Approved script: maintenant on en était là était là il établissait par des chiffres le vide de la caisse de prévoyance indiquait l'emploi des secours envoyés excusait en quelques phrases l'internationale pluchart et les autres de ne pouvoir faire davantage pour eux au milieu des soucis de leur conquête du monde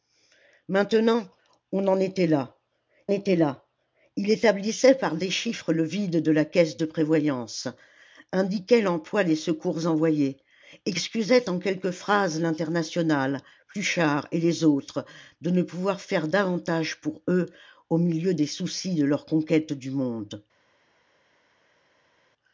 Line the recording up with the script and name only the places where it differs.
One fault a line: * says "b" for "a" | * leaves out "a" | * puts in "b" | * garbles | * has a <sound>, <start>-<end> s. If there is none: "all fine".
all fine